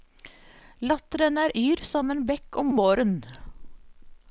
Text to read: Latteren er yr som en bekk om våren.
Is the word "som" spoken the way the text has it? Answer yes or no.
yes